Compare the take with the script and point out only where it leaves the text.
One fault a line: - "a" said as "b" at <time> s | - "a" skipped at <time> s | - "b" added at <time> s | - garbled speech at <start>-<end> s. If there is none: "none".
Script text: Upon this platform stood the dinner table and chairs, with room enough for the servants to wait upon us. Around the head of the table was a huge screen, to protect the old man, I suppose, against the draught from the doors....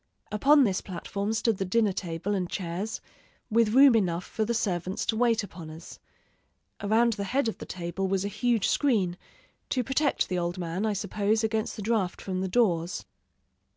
none